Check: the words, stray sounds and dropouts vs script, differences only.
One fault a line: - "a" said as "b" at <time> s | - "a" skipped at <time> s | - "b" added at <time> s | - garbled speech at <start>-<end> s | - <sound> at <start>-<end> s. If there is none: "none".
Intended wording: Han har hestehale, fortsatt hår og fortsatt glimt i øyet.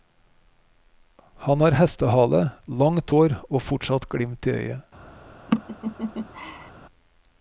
- "fortsatt" said as "langt" at 2.8 s
- laugh at 5.5-6.7 s